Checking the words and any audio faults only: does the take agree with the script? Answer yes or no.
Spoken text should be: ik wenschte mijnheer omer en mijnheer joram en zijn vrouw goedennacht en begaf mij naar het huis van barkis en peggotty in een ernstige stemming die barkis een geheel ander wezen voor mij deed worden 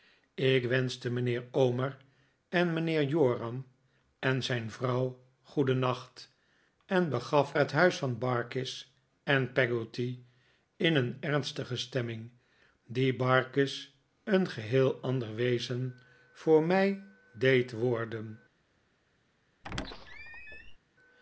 no